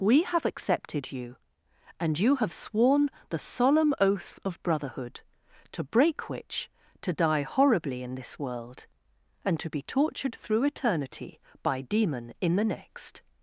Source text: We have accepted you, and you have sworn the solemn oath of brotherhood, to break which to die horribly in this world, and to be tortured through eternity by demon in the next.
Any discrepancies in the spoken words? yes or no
no